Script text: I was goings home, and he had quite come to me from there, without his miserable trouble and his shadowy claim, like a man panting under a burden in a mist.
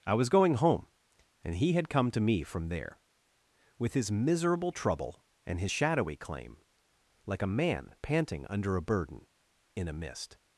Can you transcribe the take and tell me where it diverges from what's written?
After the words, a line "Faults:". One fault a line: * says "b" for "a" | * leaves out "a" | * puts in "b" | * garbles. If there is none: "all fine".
I was going home, and he had come to me from there, with his miserable trouble and his shadowy claim, like a man panting under a burden in a mist.
Faults:
* says "going" for "goings"
* leaves out "quite"
* says "with" for "without"